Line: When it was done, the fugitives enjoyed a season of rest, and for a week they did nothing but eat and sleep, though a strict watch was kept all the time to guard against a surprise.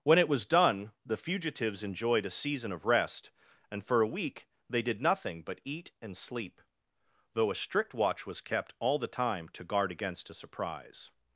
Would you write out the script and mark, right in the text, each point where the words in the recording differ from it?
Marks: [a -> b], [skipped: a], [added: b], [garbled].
When it was done, the fugitives enjoyed a season of rest, and for a week they did nothing but eat and sleep, though a strict watch was kept all the time to guard against a surprise.